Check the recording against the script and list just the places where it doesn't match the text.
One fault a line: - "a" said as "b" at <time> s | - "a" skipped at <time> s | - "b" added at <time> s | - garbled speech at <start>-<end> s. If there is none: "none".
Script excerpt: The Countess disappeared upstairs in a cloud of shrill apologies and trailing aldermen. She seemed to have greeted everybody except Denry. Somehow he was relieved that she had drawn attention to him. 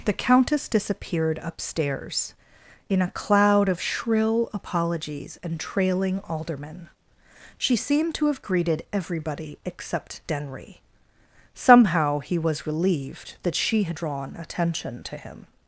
none